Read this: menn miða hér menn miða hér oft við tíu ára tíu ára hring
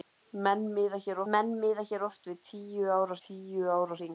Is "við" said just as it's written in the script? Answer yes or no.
yes